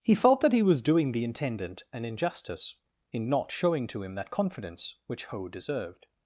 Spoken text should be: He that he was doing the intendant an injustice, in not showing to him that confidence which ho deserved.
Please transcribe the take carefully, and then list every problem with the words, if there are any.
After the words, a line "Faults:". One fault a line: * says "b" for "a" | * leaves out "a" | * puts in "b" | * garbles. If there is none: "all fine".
He felt that he was doing the intendant an injustice, in not showing to him that confidence which ho deserved.
Faults:
* puts in "felt"